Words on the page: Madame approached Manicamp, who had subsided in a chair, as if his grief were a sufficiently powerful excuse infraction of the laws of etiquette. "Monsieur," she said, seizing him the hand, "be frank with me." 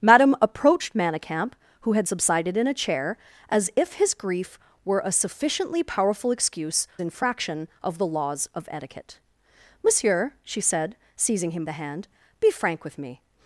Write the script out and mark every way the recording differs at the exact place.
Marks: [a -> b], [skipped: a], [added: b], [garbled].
Madame approached Manicamp, who had subsided in a chair, as if his grief were a sufficiently powerful excuse infraction of the laws of etiquette. "Monsieur," she said, seizing him the hand, "be frank with me."